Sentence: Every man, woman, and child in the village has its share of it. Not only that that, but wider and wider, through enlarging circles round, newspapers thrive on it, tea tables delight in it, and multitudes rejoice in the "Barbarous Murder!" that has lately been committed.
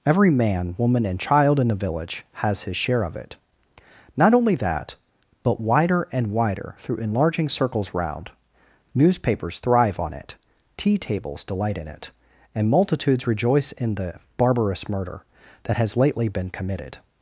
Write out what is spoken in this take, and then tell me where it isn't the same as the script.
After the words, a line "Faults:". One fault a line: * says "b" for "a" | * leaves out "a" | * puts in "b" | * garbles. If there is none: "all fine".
Every man, woman, and child in the village has his share of it. Not only that, but wider and wider, through enlarging circles round, newspapers thrive on it, tea tables delight in it, and multitudes rejoice in the "Barbarous Murder!" that has lately been committed.
Faults:
* says "his" for "its"
* leaves out "that"